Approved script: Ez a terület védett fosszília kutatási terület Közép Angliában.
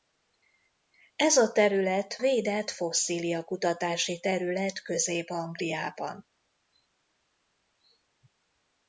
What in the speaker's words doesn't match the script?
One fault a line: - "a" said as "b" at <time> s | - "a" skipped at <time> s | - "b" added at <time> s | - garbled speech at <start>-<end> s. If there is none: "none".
none